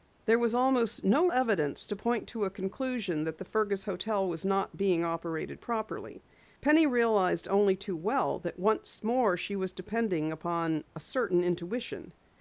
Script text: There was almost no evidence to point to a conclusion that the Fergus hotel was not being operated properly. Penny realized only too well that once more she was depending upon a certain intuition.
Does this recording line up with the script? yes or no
yes